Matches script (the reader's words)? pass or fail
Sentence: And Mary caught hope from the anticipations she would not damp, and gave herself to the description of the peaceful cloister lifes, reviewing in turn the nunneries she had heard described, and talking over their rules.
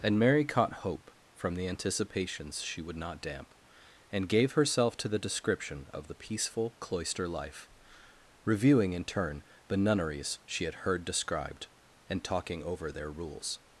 fail